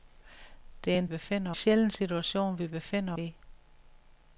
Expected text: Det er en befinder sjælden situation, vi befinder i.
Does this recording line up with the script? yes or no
yes